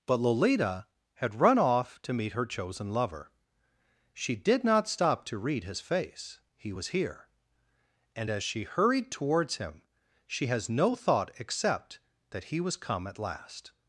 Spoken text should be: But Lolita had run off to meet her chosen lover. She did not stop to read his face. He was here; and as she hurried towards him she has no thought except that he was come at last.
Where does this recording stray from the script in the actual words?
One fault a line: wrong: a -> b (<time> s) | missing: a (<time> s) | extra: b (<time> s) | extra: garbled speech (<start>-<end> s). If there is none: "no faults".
no faults